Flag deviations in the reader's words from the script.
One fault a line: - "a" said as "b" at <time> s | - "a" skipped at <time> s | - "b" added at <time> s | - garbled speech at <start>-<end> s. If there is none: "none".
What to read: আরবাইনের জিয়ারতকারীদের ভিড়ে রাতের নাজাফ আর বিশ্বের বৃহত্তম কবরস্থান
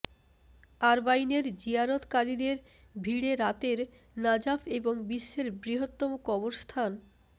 - "আর" said as "এবং" at 4.8 s